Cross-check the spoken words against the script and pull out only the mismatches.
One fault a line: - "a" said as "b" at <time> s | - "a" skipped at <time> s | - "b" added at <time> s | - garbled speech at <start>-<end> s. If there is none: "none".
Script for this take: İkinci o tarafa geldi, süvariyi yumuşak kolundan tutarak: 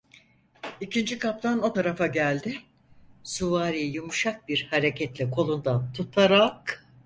- "kaptan" added at 1.2 s
- "bir hareketle" added at 4.5 s